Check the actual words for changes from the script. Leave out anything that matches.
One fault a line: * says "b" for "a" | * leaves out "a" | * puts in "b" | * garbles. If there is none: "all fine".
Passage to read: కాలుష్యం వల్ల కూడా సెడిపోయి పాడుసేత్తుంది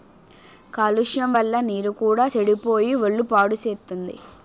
* puts in "నీరు"
* puts in "ఒళ్ళు"